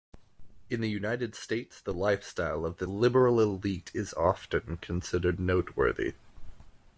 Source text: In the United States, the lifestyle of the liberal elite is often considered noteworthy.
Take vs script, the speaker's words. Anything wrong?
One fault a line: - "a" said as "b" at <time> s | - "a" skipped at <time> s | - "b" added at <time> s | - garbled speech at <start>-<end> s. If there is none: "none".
none